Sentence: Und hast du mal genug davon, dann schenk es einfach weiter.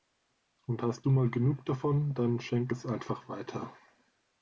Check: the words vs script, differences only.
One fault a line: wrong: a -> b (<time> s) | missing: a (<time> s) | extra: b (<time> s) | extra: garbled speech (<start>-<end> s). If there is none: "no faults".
no faults